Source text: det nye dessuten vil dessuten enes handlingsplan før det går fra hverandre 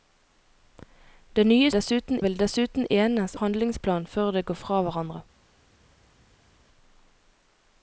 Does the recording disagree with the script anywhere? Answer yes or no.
no